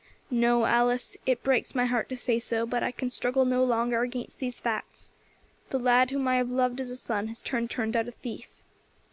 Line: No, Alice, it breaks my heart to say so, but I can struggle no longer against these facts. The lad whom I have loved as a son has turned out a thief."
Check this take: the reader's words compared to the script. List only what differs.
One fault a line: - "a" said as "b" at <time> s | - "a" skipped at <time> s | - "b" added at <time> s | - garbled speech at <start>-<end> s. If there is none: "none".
- "turned" added at 7.6 s